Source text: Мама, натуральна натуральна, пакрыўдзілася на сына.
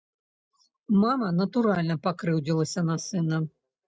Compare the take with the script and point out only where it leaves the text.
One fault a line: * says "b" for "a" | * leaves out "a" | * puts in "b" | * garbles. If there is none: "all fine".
* leaves out "натуральна"